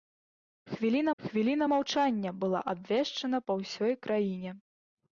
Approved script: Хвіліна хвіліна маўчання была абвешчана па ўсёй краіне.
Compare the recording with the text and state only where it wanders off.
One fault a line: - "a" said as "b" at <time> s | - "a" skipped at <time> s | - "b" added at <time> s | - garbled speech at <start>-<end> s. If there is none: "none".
none